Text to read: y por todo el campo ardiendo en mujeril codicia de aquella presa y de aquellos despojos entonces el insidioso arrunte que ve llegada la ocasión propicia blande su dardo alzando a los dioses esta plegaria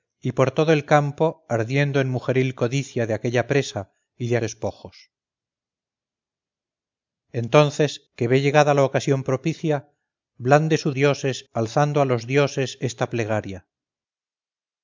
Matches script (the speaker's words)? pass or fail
fail